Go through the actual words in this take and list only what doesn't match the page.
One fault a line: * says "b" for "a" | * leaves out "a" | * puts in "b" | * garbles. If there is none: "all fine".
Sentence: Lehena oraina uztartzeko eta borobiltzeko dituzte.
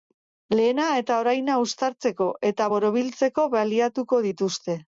* puts in "eta"
* puts in "baliatuko"